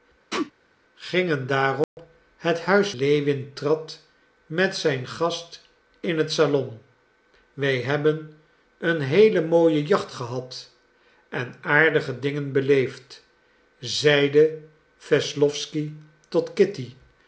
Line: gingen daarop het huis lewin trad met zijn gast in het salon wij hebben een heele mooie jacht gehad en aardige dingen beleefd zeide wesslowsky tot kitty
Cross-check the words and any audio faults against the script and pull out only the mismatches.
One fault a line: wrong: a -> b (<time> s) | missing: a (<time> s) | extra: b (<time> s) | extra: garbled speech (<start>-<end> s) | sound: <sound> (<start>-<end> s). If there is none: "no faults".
sound: sneeze (0.3-0.5 s)
sound: dropout (1.8-2.0 s)